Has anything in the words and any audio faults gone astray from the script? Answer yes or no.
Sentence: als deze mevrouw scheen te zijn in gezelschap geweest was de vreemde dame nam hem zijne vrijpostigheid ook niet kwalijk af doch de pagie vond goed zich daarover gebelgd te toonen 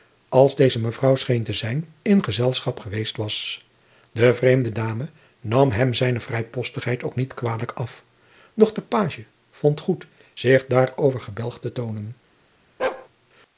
yes